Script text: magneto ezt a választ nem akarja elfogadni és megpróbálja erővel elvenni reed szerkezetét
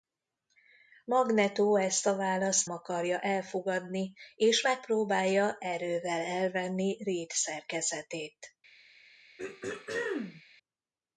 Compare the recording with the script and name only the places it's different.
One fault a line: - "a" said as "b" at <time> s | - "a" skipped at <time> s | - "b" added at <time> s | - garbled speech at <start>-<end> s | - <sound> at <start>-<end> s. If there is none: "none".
- "nem" skipped at 2.7 s
- throat clearing at 9.4-10.4 s